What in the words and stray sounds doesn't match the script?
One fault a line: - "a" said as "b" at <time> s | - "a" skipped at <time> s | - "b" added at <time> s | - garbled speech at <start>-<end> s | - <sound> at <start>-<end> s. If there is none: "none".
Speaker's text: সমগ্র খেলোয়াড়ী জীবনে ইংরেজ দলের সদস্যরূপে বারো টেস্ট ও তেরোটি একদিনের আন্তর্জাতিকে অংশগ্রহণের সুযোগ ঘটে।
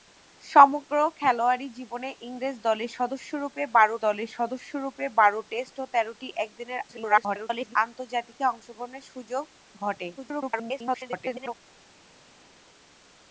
- "দলের সদস্যরূপে বারো" added at 4.0 s
- garbled speech at 6.9-7.8 s
- garbled speech at 10.2-11.6 s